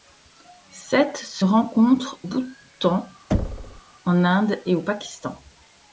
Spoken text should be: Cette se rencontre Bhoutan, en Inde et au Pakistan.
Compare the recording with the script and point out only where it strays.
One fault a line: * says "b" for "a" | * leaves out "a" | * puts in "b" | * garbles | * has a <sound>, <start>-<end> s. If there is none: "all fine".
* has a thud, 3.3-3.8 s